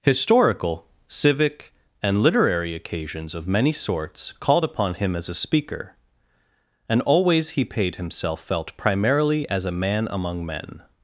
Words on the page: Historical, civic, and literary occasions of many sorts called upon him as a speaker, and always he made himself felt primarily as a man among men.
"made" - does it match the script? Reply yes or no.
no